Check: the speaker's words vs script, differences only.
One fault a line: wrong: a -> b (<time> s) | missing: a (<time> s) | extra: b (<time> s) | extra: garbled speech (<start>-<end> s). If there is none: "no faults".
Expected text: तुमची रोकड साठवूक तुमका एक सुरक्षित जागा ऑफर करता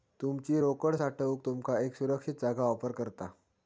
no faults